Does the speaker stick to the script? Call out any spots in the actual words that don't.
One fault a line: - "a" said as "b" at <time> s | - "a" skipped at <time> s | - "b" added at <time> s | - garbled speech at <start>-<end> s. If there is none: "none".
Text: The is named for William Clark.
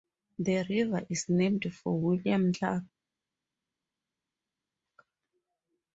- "river" added at 0.7 s